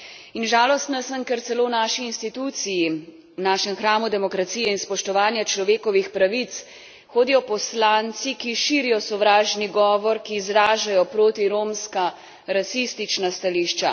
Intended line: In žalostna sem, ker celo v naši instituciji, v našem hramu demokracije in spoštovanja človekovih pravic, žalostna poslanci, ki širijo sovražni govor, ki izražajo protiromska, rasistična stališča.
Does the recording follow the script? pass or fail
fail